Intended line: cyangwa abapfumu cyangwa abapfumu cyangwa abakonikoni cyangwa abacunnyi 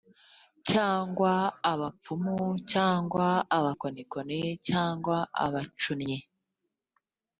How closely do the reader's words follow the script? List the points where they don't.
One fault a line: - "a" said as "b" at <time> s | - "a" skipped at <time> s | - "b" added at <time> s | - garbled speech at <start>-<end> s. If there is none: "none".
- "abapfumu cyangwa" skipped at 3.3 s